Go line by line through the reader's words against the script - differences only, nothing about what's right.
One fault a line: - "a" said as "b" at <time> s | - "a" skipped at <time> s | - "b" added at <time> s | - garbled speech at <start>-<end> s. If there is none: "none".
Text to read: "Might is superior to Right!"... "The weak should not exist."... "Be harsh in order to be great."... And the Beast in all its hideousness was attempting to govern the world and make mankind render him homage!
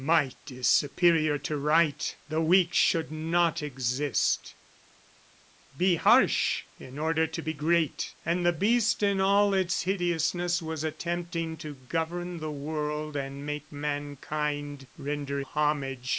- "him" skipped at 15.4 s